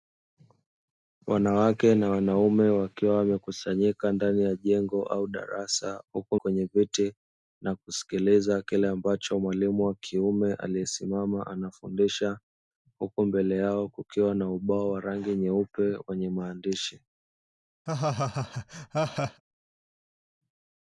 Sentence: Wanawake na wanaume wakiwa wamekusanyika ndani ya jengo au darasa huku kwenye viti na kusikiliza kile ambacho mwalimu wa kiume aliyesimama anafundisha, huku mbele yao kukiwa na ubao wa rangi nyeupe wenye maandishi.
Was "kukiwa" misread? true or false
false